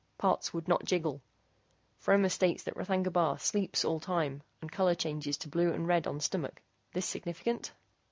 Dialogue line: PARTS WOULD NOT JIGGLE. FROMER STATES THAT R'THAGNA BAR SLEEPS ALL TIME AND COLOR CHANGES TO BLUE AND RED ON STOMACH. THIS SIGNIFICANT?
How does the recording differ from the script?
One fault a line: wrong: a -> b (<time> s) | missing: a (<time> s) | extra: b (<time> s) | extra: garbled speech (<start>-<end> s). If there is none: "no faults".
no faults